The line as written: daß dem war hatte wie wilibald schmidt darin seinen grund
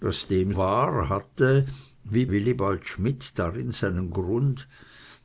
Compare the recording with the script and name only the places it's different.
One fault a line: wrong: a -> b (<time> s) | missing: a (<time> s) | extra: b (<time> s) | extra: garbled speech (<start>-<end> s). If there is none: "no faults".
no faults